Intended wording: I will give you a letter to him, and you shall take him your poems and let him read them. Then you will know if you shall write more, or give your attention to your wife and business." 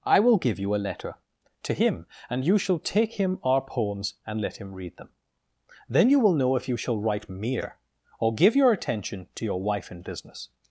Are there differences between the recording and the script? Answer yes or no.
yes